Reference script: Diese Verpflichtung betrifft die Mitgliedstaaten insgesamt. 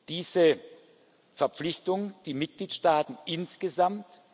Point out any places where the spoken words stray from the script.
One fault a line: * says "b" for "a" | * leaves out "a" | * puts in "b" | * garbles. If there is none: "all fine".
* leaves out "betrifft"